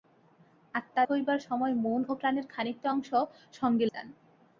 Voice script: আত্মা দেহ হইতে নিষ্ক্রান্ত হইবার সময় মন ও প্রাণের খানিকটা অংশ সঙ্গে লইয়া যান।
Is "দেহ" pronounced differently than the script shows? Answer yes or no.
yes